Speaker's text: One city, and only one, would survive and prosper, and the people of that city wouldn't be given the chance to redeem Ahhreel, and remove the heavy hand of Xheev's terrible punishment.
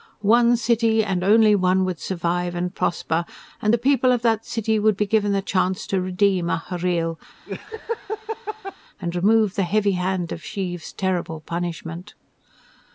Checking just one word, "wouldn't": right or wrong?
wrong